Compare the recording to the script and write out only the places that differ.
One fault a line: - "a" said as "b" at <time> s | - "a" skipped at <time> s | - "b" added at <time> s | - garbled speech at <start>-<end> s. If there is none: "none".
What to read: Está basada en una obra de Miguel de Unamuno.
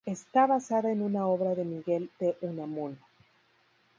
none